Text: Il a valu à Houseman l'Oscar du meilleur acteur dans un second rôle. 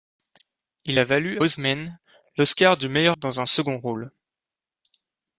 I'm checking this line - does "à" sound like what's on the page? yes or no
no